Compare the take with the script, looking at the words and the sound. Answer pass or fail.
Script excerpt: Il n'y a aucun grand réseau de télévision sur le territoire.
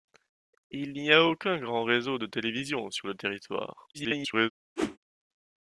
fail